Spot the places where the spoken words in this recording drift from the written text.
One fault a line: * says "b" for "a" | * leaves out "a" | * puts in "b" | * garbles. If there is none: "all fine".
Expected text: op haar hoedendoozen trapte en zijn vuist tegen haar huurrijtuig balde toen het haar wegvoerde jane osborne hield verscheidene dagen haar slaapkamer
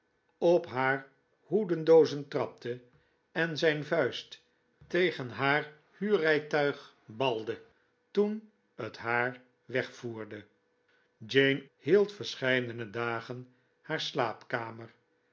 * leaves out "osborne"